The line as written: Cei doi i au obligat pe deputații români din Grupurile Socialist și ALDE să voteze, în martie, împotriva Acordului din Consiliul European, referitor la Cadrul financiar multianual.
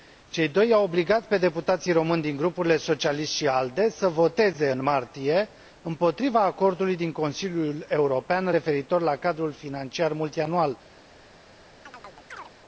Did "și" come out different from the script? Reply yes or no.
no